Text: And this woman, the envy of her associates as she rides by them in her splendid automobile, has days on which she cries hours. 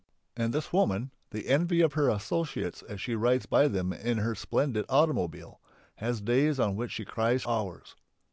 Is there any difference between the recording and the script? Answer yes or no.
no